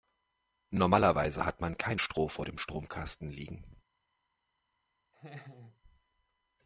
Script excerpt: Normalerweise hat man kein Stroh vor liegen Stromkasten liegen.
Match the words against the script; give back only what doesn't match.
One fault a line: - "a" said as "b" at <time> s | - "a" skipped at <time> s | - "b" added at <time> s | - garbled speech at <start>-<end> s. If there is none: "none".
- "liegen" said as "dem" at 2.5 s